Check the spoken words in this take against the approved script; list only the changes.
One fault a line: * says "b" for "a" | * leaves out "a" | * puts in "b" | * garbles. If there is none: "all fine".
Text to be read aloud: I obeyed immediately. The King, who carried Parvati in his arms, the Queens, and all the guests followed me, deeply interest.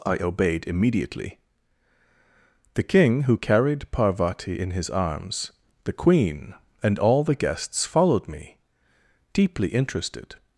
* says "Queen" for "Queens"
* says "interested" for "interest"